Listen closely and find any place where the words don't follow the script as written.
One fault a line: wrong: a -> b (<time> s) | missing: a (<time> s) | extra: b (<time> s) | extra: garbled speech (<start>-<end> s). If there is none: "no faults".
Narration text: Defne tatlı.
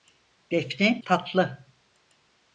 no faults